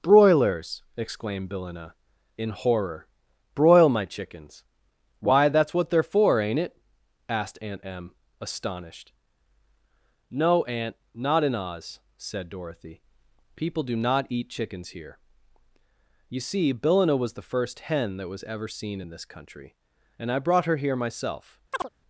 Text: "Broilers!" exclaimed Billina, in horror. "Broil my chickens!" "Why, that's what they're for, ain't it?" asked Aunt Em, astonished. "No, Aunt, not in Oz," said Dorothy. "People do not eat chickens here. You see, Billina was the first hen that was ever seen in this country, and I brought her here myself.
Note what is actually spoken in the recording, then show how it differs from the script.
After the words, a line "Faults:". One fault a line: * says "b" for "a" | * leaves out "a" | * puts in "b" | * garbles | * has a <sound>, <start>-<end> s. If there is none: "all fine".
"Broilers!" exclaimed Billina, in horror. "Broil my chickens!" "Why, that's what they're for, ain't it?" asked Aunt Em, astonished. "No, Aunt, not in Oz," said Dorothy. "People do not eat chickens here. You see, Billina was the first hen that was ever seen in this country, and I brought her here myself.
Faults:
* has a chirp, 21.7-21.9 s